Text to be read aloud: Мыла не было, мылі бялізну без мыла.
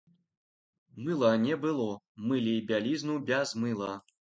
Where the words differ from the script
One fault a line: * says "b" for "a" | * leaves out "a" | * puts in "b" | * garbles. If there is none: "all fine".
all fine